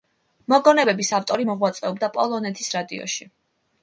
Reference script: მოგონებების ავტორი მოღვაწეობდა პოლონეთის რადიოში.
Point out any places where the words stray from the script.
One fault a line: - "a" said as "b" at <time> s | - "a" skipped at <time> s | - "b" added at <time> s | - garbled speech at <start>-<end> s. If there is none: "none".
none